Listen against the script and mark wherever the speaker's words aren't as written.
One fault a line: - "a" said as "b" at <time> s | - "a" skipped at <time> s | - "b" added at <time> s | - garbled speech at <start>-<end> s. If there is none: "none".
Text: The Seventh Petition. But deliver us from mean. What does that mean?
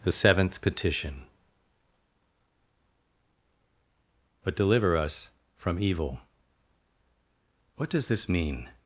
- "mean" said as "evil" at 5.8 s
- "that" said as "this" at 8.1 s